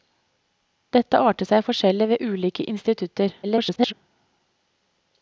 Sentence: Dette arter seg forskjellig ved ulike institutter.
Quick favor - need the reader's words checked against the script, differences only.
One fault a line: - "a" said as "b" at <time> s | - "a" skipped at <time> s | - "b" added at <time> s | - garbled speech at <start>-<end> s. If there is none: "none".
- garbled speech at 3.4-3.9 s